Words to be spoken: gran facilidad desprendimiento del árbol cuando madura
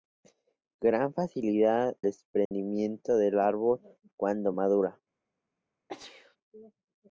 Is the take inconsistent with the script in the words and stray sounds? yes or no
yes